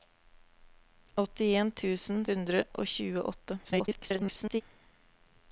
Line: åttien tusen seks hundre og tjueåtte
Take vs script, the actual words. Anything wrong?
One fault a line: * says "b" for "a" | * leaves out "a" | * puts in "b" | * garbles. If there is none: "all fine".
* leaves out "seks"
* garbles